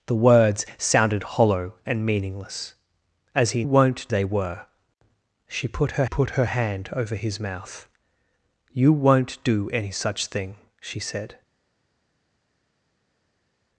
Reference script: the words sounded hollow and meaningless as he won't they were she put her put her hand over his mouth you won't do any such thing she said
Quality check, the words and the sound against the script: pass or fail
pass